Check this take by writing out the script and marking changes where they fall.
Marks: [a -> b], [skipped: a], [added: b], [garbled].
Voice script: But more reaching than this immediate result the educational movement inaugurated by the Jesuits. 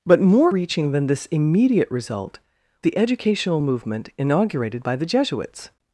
But more reaching than this immediate result the educational movement inaugurated by the Jesuits.